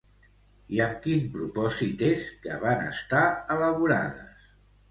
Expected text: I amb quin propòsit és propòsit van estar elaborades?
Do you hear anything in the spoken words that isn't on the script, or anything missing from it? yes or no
yes